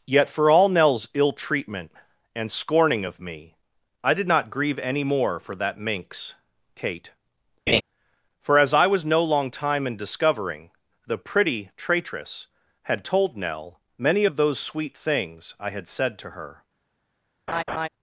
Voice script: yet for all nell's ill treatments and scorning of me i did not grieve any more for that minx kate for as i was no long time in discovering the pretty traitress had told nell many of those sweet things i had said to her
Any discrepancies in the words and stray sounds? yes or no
yes